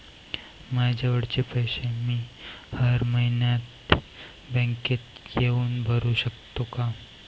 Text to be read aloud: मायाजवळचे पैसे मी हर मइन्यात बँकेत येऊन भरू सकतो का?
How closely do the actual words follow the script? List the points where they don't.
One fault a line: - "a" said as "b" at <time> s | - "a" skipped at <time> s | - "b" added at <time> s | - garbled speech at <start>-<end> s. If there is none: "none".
none